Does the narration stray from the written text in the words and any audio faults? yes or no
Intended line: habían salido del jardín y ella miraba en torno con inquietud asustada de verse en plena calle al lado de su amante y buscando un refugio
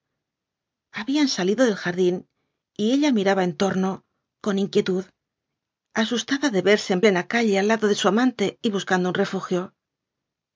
no